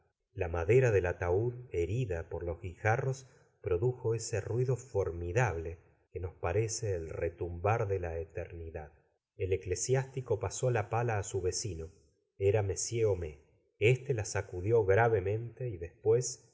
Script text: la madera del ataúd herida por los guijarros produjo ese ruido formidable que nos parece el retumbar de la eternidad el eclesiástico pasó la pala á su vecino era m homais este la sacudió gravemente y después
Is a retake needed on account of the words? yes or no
no